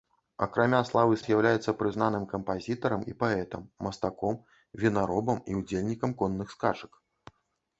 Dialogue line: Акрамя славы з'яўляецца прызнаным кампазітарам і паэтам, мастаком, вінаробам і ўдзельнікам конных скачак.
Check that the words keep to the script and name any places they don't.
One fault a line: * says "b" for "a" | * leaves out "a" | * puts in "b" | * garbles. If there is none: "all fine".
all fine